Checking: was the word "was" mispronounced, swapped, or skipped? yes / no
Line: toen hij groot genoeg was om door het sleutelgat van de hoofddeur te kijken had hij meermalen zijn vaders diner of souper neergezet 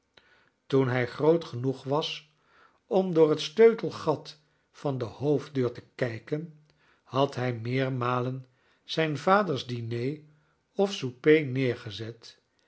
no